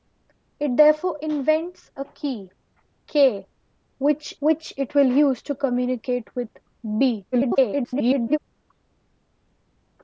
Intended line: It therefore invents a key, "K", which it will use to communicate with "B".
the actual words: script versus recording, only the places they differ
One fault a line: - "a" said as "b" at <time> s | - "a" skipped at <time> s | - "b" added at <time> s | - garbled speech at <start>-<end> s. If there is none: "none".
- "which" added at 4.4 s
- garbled speech at 7.3-8.4 s